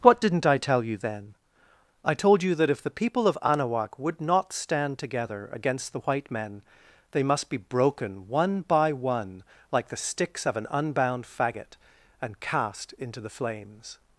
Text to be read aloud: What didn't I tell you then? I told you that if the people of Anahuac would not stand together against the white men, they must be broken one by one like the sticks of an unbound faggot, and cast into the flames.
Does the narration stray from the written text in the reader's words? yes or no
no